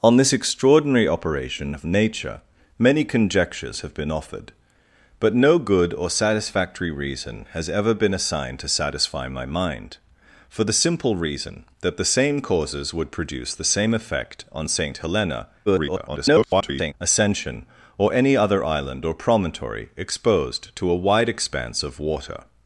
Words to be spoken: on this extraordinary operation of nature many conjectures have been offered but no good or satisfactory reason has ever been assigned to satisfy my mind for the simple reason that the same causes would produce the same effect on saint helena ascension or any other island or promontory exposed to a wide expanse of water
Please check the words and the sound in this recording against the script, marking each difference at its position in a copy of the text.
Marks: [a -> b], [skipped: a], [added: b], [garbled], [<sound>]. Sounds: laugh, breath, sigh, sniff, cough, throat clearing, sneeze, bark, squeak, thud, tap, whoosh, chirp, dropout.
on this extraordinary operation of nature many conjectures have been offered but no good or satisfactory reason has ever been assigned to satisfy my mind for the simple reason that the same causes would produce the same effect on saint helena [garbled] ascension or any other island or promontory exposed to a wide expanse of water